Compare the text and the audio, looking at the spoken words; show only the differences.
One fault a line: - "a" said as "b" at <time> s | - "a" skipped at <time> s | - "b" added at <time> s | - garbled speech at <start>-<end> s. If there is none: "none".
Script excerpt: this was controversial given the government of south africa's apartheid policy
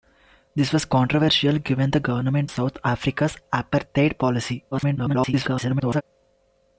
- "of" skipped at 2.5 s
- garbled speech at 4.7-6.0 s